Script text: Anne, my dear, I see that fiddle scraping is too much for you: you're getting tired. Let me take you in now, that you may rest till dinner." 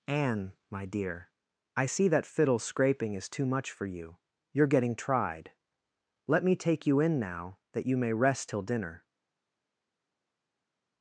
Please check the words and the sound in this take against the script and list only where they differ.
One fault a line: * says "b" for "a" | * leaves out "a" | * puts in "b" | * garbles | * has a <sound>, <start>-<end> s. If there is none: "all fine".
* says "tried" for "tired"